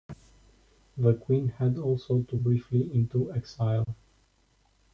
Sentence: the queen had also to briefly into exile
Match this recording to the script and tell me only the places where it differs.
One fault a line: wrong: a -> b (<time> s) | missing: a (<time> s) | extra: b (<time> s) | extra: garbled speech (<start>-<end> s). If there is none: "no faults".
no faults